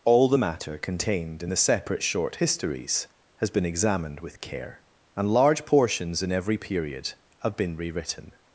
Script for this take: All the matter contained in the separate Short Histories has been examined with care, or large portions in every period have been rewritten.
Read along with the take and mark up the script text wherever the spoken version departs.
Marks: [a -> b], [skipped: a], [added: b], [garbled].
All the matter contained in the separate Short Histories has been examined with care, [or -> and] large portions in every period have been rewritten.